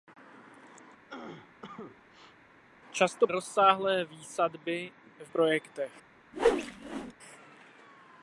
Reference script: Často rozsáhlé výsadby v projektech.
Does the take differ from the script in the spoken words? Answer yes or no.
no